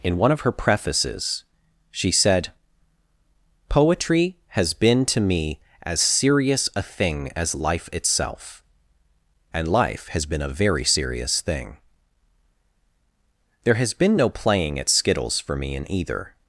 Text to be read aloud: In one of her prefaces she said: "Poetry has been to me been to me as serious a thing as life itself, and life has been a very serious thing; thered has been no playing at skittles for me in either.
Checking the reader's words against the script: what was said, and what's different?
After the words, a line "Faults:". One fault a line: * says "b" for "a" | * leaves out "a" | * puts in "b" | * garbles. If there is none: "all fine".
In one of her prefaces she said: "Poetry has been to me as serious a thing as life itself, and life has been a very serious thing; there has been no playing at skittles for me in either.
Faults:
* leaves out "been to me"
* says "there" for "thered"